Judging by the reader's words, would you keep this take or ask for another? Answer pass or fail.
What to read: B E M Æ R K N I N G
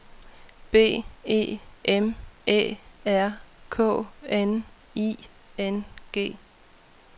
pass